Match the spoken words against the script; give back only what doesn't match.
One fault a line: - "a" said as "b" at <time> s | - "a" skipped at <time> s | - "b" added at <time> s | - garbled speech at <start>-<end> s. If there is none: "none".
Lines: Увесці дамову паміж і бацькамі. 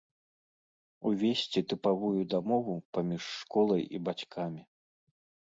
- "тыпавую" added at 1.7 s
- "школай" added at 3.4 s